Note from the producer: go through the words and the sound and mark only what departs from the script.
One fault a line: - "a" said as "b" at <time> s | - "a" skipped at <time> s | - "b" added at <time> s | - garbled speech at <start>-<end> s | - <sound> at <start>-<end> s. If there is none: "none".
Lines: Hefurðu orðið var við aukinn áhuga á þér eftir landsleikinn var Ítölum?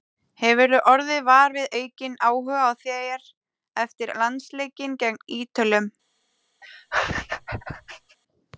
- "var" said as "gegn" at 5.1 s
- laugh at 6.6-8.2 s